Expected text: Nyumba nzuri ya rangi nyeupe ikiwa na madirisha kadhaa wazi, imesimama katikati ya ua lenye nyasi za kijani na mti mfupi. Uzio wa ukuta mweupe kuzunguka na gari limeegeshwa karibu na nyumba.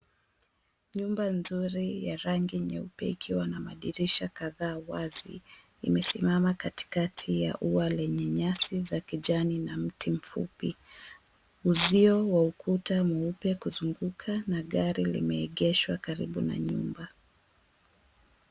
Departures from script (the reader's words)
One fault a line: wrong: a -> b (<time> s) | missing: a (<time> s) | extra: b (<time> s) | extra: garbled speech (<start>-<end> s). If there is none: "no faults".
no faults